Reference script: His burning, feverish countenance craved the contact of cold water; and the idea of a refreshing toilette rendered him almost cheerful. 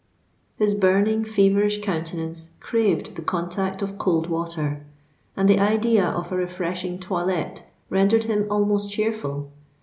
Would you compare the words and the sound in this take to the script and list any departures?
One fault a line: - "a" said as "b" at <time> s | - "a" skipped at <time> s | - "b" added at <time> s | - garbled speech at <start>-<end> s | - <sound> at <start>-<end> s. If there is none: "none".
none